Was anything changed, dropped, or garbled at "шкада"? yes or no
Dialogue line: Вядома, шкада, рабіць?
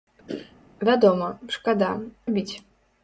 no